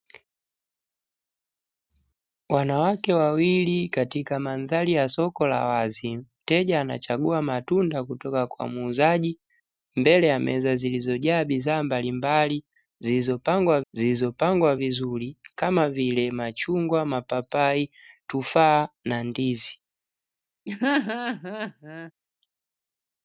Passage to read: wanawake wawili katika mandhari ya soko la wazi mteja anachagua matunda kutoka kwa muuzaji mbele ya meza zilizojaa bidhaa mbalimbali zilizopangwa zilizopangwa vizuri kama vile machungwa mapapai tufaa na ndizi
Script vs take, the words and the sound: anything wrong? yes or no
yes